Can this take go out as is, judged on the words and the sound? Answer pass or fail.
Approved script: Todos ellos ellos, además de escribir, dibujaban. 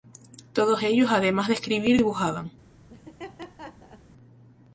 fail